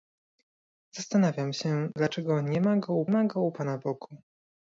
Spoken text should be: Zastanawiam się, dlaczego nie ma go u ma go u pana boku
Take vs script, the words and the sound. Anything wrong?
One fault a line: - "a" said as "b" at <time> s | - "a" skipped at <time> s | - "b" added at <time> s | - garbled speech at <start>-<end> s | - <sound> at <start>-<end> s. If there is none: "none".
none